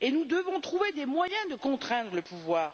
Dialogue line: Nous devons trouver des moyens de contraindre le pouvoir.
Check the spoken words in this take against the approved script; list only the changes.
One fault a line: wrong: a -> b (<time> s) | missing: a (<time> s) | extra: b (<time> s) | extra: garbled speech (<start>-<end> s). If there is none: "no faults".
no faults